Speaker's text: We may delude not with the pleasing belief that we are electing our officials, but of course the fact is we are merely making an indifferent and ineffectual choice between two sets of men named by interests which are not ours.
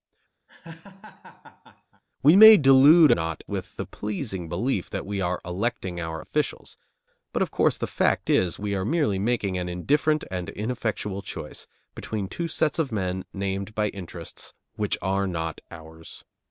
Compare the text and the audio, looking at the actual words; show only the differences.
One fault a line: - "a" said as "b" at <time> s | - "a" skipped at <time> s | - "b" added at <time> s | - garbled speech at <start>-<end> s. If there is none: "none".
none